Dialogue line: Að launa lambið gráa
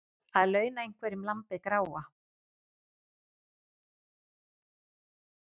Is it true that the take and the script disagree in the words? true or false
true